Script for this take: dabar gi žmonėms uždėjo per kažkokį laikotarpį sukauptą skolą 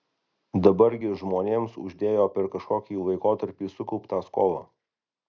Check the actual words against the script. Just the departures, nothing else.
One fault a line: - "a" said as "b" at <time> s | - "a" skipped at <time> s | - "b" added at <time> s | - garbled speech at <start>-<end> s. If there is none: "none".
none